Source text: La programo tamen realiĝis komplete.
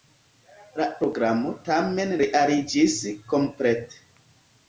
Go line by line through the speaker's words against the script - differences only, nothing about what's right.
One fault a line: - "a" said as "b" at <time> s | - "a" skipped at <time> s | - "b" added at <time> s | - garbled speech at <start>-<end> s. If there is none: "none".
none